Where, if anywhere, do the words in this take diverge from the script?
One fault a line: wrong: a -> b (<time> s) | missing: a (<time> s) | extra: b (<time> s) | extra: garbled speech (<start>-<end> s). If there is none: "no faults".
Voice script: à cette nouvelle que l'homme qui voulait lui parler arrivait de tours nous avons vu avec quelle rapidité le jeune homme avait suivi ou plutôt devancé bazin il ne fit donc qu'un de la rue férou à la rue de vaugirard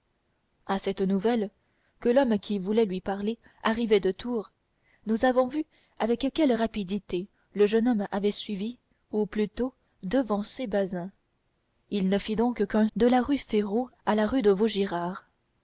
no faults